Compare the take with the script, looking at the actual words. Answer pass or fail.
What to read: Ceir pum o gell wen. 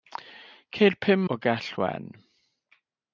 pass